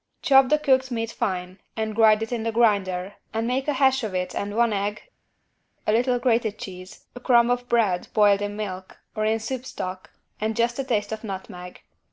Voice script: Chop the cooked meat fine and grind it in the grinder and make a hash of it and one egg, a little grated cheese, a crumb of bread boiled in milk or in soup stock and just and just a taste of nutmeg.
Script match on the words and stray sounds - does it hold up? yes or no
no